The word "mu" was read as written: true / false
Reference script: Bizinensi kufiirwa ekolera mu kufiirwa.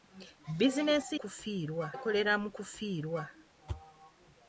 true